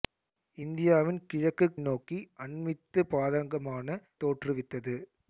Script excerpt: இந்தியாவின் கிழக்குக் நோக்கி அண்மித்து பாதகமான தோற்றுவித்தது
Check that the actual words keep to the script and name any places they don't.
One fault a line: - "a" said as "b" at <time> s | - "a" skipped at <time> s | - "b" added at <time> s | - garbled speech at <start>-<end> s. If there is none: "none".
none